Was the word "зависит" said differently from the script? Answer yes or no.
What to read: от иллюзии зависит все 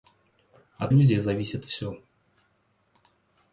no